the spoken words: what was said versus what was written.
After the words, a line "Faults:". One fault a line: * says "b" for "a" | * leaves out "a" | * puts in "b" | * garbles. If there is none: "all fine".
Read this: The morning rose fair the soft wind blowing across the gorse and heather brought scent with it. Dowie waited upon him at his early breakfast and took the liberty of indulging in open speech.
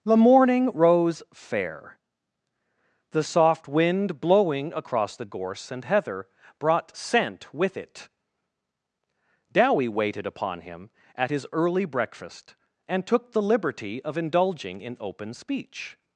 The morning rose fair the soft wind blowing across the gorse and heather brought scent with it. Dowie waited upon him at his early breakfast and took the liberty of indulging in open speech.
Faults:
all fine